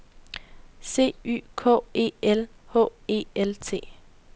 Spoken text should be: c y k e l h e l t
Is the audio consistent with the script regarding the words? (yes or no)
yes